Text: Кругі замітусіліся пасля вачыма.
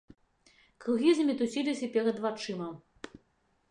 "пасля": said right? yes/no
no